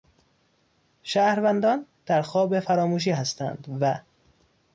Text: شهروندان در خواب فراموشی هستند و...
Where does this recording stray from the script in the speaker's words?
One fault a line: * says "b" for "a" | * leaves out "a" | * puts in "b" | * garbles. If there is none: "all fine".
all fine